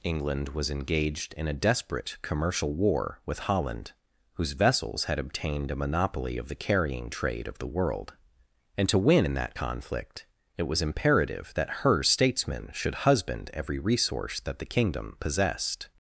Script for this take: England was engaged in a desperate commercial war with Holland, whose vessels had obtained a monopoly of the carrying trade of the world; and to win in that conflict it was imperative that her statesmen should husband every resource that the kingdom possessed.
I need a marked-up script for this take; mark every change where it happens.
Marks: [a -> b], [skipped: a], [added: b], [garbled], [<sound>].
England was engaged in a desperate commercial war with Holland, whose vessels had obtained a monopoly of the carrying trade of the world; and to win in that conflict it was imperative that her statesmen should husband every resource that the kingdom possessed.